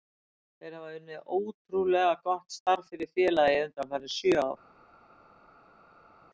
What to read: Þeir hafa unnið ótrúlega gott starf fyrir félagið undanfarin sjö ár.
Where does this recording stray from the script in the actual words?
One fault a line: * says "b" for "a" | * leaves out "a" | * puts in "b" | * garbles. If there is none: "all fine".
all fine